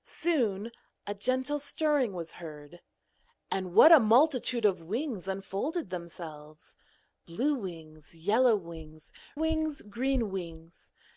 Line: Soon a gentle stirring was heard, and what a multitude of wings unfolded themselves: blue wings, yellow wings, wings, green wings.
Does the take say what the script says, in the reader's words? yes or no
yes